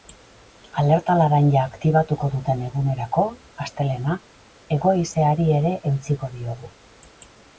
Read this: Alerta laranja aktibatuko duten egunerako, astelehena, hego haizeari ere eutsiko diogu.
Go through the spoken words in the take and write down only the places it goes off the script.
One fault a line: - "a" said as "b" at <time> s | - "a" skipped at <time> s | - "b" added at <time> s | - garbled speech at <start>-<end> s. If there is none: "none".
none